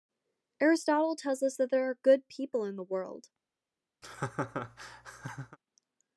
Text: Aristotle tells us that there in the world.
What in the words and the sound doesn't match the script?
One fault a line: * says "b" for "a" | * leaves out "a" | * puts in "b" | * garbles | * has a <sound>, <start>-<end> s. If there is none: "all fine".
* puts in "are good people"
* has a laugh, 4.0-5.6 s